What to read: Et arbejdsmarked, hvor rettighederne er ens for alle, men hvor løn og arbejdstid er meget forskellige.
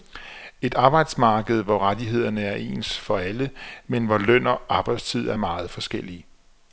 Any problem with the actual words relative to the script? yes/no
no